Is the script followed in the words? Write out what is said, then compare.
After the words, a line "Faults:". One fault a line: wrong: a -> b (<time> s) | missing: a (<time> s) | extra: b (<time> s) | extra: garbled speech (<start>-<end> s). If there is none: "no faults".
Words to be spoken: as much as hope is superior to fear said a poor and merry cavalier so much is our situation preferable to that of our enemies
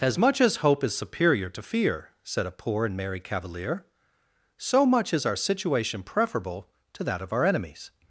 as much as hope is superior to fear said a poor and merry cavalier so much is our situation preferable to that of our enemies
Faults:
no faults